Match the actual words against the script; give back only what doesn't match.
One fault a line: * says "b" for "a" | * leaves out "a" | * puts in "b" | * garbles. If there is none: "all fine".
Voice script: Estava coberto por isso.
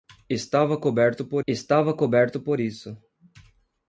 * puts in "estava coberto por"